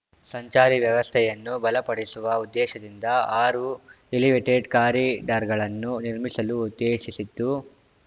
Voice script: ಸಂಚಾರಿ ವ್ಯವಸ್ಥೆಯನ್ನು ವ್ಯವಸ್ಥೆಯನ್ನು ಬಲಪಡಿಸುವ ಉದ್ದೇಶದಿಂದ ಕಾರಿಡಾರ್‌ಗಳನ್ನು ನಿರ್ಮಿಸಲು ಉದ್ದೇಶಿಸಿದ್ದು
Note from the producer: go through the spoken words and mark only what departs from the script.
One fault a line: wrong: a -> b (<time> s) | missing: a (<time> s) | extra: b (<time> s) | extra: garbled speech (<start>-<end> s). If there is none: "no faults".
missing: ವ್ಯವಸ್ಥೆಯನ್ನು (1.6 s)
extra: ಆರು ಎಲಿವೇಟೆಡ್ (3.4 s)